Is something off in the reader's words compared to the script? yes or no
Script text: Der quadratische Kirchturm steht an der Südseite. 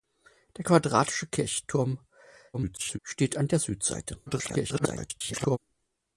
yes